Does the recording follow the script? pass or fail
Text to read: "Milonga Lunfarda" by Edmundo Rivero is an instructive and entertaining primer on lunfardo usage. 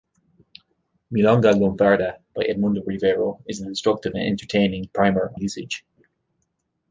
fail